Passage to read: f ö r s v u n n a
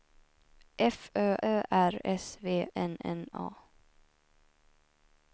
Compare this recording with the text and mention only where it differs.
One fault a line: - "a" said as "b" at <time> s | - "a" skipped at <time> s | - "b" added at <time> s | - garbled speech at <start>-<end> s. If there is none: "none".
- "ö" added at 1.4 s
- "u" skipped at 2.5 s